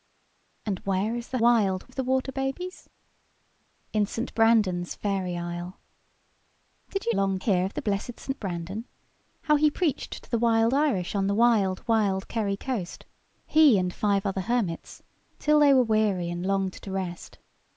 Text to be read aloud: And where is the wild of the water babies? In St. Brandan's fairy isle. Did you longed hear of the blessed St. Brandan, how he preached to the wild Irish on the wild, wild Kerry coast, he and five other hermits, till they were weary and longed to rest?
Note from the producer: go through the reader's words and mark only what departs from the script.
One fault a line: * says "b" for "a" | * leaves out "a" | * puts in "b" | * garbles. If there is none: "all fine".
all fine